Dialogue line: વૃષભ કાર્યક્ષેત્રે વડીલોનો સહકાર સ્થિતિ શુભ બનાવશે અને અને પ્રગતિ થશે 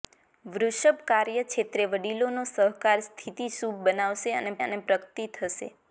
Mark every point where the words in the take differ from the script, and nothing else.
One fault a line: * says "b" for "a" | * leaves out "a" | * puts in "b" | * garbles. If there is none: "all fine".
all fine